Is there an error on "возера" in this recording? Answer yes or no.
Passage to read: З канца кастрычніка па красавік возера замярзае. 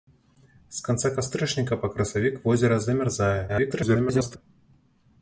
no